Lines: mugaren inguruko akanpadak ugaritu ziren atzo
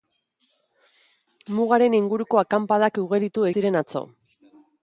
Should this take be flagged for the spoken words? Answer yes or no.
no